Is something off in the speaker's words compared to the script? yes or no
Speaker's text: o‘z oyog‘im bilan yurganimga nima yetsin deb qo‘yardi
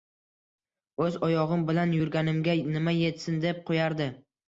no